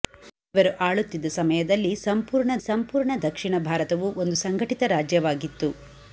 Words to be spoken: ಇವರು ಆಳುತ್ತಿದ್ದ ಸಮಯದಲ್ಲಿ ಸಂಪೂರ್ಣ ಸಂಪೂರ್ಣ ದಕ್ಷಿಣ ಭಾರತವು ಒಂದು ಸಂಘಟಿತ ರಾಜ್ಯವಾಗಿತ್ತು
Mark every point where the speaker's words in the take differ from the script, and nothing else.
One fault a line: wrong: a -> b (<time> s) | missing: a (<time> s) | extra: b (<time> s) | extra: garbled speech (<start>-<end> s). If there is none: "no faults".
no faults